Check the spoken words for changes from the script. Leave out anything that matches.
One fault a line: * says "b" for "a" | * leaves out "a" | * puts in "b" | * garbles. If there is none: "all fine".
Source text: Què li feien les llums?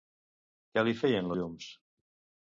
* leaves out "les"